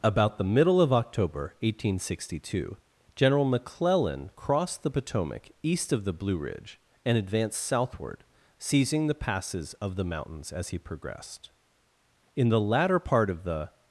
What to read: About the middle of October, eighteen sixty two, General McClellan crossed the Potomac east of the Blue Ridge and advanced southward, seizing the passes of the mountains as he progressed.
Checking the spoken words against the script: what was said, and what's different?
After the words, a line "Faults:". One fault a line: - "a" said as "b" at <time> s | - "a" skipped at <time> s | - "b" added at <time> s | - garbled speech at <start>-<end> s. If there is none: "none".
About the middle of October, eighteen sixty two, General McClellan crossed the Potomac east of the Blue Ridge and advanced southward, seizing the passes of the mountains as he progressed. In the latter part of the
Faults:
- "In the latter part of the" added at 12.3 s